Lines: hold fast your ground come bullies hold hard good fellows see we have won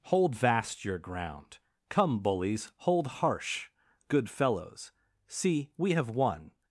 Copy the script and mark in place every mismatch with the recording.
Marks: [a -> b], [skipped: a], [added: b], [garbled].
hold [fast -> vast] your ground come bullies hold [hard -> harsh] good fellows see we have won